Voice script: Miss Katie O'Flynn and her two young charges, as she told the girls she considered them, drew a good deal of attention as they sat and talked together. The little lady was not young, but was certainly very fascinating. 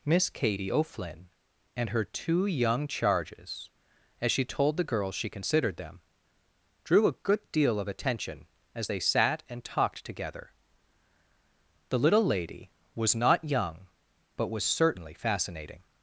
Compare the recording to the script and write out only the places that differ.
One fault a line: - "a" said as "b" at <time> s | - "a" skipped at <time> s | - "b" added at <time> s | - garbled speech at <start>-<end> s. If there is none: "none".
- "very" skipped at 15.1 s